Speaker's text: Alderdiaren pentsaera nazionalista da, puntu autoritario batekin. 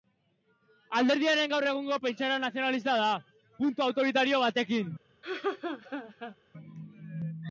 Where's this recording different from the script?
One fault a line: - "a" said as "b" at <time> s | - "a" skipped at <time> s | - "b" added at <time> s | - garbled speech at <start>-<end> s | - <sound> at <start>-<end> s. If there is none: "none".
- "gaur egungo" added at 1.5 s
- laugh at 5.2-6.4 s